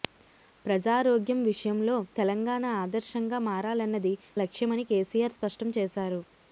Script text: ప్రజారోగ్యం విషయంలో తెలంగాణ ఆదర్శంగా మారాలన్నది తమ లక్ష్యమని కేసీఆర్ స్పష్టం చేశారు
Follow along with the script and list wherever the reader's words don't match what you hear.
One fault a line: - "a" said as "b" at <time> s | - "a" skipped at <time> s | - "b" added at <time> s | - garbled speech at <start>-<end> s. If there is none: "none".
- "తమ" skipped at 4.1 s